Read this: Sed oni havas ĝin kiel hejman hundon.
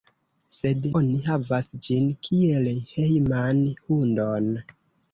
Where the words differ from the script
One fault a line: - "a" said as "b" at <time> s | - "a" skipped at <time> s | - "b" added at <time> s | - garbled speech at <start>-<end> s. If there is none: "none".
none